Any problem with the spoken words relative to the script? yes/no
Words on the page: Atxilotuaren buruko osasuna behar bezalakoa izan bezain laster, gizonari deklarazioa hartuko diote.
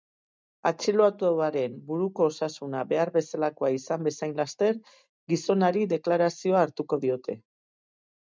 no